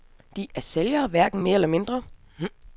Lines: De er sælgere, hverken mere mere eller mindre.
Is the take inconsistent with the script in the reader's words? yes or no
yes